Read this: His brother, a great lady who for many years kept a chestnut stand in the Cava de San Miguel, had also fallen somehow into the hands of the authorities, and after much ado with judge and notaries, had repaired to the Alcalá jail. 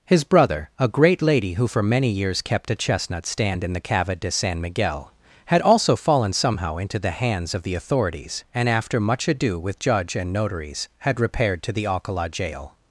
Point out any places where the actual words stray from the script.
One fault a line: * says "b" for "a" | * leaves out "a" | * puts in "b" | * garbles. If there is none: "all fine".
all fine